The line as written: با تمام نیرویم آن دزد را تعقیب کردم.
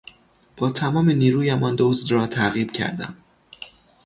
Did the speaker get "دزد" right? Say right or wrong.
right